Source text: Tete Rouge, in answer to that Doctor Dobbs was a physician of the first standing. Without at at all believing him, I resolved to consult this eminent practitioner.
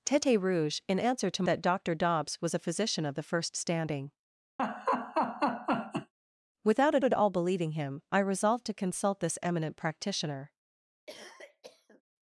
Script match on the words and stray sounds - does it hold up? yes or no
no